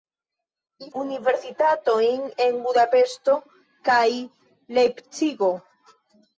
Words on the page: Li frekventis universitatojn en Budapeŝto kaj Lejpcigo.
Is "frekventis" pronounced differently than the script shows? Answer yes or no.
yes